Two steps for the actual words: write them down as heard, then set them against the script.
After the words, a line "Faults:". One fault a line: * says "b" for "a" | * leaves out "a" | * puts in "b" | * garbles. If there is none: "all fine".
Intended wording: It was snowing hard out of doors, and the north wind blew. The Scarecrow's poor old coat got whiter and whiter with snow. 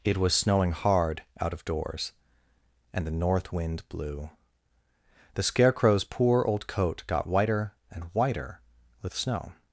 It was snowing hard out of doors, and the north wind blew. The Scarecrow's poor old coat got whiter and whiter with snow.
Faults:
all fine